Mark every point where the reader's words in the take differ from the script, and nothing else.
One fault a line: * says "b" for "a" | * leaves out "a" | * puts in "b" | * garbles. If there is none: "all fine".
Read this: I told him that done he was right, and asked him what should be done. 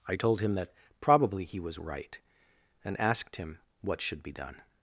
* says "probably" for "done"